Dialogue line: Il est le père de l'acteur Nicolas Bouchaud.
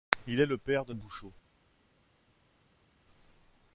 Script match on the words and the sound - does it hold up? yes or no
no